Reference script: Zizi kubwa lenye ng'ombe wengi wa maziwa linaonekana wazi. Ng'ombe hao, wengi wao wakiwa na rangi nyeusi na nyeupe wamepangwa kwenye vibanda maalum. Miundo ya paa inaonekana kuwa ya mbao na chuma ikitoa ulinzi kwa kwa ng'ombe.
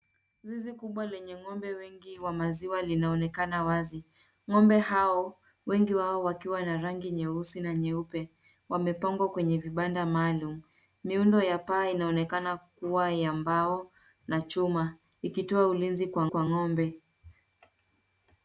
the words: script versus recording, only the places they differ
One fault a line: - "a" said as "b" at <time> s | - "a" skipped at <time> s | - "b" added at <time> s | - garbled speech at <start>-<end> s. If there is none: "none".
none